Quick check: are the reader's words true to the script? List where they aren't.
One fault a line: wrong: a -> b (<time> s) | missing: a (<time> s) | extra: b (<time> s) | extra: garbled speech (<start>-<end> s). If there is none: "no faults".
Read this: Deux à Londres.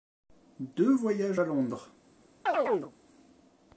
extra: voyages (0.9 s)